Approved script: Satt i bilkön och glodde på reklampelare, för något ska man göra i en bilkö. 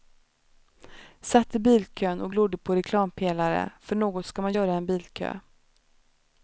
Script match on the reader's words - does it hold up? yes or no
yes